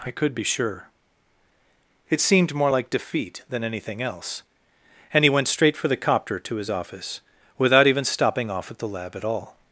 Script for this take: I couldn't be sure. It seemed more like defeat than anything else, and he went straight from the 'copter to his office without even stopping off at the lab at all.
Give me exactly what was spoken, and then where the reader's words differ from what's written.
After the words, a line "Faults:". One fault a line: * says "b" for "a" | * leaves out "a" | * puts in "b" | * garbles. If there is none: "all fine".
I could be sure. It seemed more like defeat than anything else, and he went straight for the 'copter to his office without even stopping off at the lab at all.
Faults:
* says "could" for "couldn't"
* says "for" for "from"